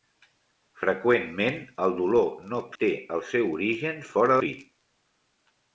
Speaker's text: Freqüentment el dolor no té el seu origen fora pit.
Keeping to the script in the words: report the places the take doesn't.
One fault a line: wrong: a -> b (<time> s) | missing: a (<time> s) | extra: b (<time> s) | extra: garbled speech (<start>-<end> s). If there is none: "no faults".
no faults